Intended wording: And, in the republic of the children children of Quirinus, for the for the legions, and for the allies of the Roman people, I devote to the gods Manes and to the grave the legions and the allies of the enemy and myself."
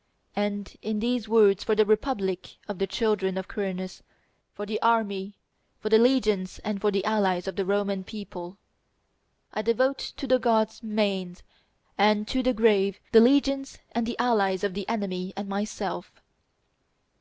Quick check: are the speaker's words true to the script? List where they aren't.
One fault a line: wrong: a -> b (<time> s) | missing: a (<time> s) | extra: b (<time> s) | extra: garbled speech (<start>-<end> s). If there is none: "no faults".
extra: these words for (1.0 s)
missing: children (3.4 s)
extra: army (4.8 s)